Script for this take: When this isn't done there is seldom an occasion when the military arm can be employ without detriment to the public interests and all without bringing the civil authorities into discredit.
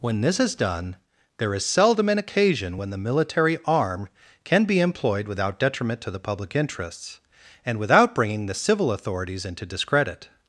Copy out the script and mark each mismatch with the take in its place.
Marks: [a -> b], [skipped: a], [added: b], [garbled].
When this [isn't -> is] done there is seldom an occasion when the military arm can be [employ -> employed] without detriment to the public interests and [skipped: all] without bringing the civil authorities into discredit.